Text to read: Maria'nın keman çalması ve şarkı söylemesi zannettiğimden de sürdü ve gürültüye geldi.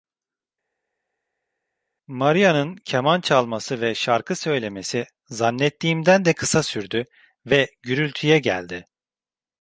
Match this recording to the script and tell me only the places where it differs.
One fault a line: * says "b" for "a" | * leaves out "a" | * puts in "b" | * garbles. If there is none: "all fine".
* puts in "kısa"